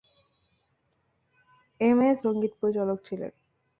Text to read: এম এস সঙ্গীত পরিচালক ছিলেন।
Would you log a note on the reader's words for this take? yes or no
no